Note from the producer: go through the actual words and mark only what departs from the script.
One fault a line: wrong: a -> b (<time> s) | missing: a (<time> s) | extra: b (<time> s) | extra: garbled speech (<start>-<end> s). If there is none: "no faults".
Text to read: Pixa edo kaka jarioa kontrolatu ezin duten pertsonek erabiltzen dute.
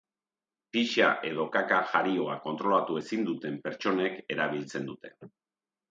no faults